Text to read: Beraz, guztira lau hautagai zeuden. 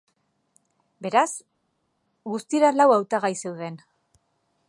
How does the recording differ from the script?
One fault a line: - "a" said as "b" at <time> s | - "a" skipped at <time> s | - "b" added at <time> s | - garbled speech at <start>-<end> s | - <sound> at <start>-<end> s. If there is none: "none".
none